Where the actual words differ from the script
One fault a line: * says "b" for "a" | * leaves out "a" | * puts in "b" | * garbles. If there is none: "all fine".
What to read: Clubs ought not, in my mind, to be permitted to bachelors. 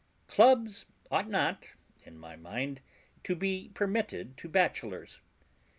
all fine